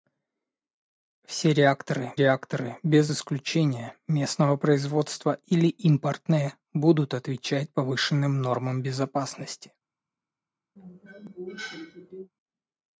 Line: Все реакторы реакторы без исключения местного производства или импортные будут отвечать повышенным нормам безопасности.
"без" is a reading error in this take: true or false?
false